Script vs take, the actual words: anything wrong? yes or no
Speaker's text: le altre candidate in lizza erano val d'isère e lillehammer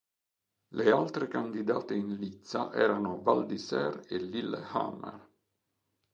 no